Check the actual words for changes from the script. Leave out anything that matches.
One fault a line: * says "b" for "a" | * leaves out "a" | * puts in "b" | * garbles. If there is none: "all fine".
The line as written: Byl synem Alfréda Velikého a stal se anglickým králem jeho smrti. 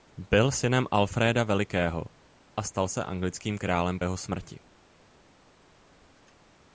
all fine